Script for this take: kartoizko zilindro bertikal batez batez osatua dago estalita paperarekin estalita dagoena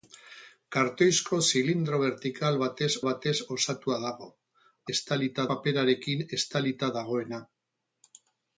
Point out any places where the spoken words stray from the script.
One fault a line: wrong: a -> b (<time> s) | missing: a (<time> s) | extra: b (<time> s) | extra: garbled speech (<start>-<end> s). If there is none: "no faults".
no faults